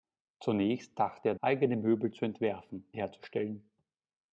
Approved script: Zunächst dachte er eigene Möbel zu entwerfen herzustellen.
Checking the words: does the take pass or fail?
pass